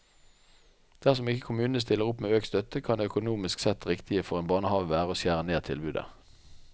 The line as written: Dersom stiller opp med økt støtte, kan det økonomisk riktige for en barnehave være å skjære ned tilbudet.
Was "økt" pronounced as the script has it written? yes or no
yes